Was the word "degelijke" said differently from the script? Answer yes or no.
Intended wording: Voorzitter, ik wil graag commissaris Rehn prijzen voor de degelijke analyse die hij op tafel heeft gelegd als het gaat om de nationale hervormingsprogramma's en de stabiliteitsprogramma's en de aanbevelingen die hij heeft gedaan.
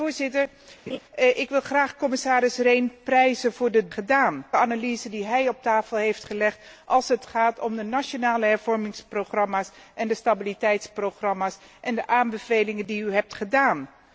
yes